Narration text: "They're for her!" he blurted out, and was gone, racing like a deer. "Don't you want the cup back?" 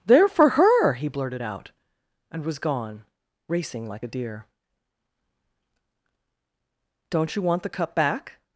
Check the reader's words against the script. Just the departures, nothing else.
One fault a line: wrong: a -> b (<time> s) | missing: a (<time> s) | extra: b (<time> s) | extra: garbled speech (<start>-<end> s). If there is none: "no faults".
no faults